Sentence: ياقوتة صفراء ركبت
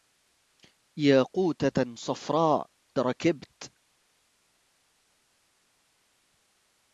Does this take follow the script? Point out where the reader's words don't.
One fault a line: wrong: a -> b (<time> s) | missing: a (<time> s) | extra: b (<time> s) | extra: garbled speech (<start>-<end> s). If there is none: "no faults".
no faults